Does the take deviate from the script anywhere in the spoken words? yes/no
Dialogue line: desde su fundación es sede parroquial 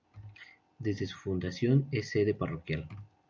no